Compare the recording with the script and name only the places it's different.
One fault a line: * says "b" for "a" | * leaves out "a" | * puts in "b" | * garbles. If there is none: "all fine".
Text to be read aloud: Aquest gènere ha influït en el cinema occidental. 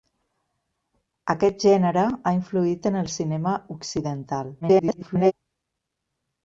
* garbles